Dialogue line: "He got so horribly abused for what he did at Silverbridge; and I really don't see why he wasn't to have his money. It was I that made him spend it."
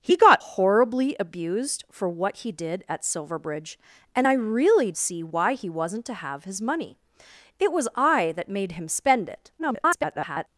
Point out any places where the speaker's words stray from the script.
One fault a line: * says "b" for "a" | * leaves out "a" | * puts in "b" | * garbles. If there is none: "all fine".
* leaves out "so"
* leaves out "don't"
* garbles